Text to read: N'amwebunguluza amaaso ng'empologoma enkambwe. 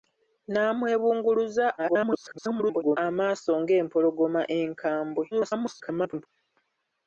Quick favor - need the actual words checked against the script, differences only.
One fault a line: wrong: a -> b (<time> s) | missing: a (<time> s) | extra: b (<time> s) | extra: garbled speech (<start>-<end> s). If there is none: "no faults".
extra: garbled speech (1.8-3.0 s)
extra: garbled speech (5.3-6.3 s)